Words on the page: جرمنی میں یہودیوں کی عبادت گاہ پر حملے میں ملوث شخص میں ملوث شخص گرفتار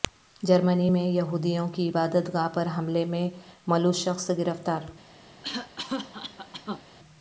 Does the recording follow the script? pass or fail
fail